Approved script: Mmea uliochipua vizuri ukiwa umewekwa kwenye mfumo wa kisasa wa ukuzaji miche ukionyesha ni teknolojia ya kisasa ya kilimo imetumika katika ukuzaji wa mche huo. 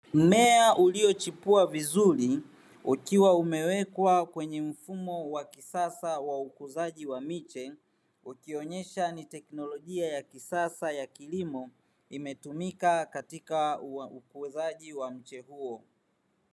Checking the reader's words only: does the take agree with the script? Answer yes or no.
no